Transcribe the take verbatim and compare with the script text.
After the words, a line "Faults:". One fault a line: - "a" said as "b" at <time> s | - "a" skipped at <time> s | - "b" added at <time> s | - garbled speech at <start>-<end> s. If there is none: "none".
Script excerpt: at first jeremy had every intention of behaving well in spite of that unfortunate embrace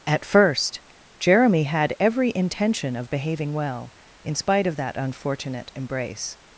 at first jeremy had every intention of behaving well in spite of that unfortunate embrace
Faults:
none